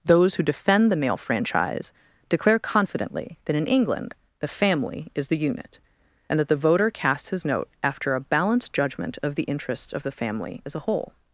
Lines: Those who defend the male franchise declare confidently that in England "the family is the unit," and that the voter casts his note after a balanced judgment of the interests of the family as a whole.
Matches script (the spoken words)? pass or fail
pass